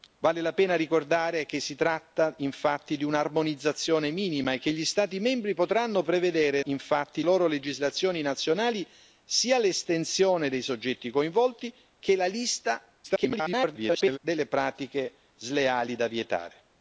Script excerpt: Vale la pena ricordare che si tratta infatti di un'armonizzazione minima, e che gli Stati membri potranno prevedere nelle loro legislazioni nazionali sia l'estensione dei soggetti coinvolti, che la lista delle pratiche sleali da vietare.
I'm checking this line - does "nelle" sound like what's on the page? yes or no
no